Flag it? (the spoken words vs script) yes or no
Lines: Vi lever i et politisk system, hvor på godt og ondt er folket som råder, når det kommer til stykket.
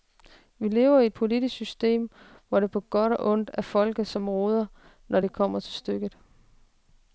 yes